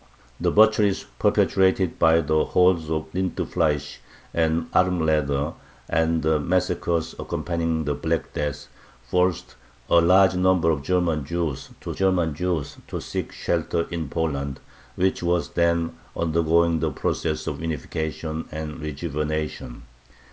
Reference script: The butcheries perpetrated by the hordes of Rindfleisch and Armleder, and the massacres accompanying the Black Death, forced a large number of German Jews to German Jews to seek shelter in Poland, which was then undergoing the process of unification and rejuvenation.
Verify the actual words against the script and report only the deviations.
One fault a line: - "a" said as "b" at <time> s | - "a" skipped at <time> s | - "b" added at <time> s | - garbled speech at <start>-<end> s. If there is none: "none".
none